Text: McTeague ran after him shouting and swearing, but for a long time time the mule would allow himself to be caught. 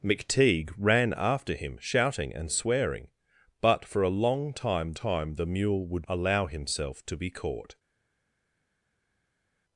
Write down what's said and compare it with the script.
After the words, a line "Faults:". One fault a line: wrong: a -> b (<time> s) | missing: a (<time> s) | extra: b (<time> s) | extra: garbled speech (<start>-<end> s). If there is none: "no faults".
McTeague ran after him shouting and swearing, but for a long time time the mule would allow himself to be caught.
Faults:
no faults